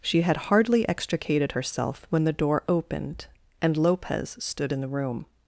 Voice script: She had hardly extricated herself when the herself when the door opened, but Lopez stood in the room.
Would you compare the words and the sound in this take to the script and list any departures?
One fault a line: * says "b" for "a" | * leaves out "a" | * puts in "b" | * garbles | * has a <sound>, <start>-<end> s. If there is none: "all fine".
* leaves out "herself when the"
* says "and" for "but"